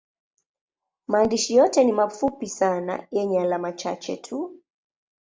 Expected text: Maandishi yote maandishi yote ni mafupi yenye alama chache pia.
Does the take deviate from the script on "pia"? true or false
true